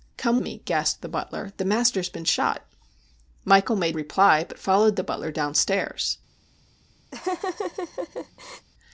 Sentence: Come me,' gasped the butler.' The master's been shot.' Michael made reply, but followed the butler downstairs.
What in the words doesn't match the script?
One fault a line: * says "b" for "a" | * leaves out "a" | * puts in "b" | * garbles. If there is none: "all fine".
all fine